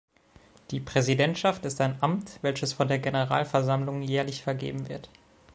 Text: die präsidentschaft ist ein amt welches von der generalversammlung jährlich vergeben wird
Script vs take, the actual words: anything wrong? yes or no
no